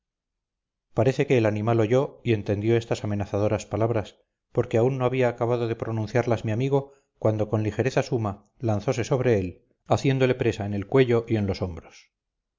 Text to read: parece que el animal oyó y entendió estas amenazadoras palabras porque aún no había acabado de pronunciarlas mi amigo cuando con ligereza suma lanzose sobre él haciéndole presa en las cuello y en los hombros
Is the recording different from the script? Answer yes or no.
yes